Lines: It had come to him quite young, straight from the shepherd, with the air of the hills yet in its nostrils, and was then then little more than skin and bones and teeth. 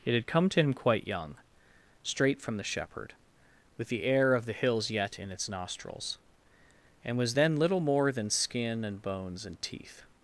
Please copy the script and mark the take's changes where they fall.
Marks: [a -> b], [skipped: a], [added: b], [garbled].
It had come to him quite young, straight from the shepherd, with the air of the hills yet in its nostrils, and was then [skipped: then] little more than skin and bones and teeth.